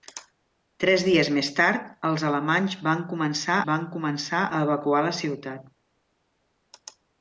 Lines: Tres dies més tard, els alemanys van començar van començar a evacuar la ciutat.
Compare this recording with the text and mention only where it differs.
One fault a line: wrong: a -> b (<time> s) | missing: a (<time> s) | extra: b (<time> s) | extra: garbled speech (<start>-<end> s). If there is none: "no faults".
no faults